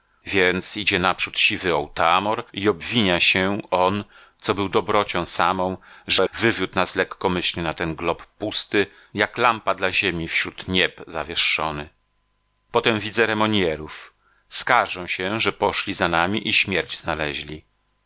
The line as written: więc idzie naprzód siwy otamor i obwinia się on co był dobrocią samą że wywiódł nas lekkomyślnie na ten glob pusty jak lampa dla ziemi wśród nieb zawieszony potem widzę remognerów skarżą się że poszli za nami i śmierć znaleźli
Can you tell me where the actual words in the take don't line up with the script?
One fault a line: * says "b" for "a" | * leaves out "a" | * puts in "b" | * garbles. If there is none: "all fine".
all fine